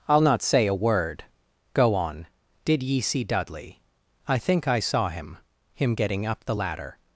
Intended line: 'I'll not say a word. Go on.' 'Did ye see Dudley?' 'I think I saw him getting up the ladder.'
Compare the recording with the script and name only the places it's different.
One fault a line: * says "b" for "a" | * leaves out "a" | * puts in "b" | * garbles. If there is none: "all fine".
* puts in "him"